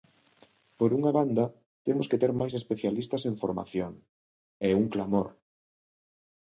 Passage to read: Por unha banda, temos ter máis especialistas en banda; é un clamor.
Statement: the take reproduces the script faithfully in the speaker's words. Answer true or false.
false